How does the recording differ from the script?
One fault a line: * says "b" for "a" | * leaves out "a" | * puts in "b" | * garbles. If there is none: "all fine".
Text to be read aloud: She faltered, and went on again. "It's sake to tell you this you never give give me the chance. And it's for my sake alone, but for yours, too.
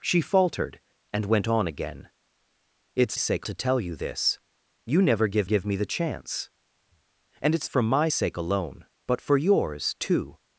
all fine